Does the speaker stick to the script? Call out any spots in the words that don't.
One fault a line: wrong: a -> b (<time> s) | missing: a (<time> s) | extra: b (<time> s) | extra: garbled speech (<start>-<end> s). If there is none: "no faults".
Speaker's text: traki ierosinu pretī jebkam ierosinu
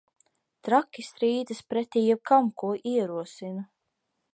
wrong: ierosinu -> strīdas (1.1 s)
extra: ko (2.6 s)